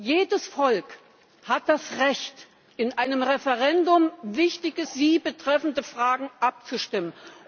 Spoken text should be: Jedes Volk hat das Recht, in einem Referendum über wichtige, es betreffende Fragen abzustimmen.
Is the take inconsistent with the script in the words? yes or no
no